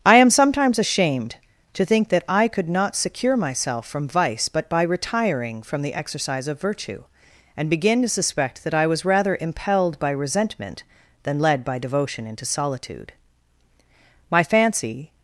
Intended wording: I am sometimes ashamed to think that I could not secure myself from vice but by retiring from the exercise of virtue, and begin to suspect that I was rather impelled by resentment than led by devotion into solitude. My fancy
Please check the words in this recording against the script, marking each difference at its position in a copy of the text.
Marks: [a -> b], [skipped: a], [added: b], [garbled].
I am sometimes ashamed to think that I could not secure myself from vice but by retiring from the exercise of virtue, and begin to suspect that I was rather impelled by resentment than led by devotion into solitude. My fancy